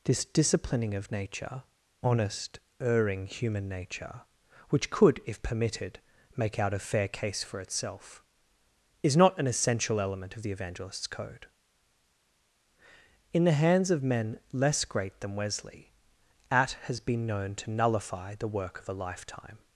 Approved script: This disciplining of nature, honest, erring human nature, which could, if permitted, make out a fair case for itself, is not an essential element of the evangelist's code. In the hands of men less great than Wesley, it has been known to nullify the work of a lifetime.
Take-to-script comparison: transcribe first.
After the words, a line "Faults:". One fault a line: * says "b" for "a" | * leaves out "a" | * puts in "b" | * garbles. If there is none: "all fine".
This disciplining of nature, honest, erring human nature, which could, if permitted, make out a fair case for itself, is not an essential element of the evangelist's code. In the hands of men less great than Wesley, at has been known to nullify the work of a lifetime.
Faults:
* says "at" for "it"